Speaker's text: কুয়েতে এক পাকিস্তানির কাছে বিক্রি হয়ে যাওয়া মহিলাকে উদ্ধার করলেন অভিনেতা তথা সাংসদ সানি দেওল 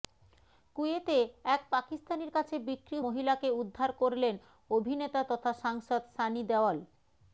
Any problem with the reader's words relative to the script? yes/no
yes